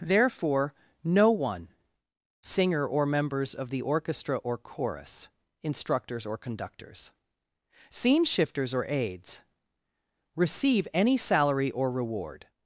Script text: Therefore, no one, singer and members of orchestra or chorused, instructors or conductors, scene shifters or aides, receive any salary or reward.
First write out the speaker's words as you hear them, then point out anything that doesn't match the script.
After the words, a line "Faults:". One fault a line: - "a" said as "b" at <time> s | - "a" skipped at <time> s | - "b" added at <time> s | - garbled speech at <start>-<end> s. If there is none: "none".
Therefore, no one, singer or members of the orchestra or chorus, instructors or conductors, scene shifters or aides, receive any salary or reward.
Faults:
- "and" said as "or" at 2.9 s
- "the" added at 3.7 s
- "chorused" said as "chorus" at 4.6 s